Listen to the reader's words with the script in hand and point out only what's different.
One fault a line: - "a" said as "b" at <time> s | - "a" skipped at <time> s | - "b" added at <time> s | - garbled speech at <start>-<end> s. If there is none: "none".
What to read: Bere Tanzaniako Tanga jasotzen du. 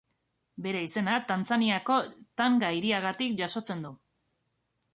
- "izena" added at 0.8 s
- "hiriagatik" added at 2.8 s